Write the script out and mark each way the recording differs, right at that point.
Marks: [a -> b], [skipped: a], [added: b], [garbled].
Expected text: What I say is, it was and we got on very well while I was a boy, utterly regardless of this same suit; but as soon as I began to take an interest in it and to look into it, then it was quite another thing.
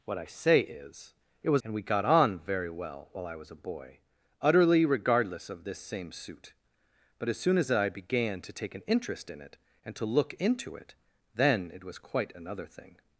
What I say is, it was and we got on very well while I was a boy, utterly regardless of this same suit; but as soon as I began to take an interest in it and to look into it, then it was quite another thing.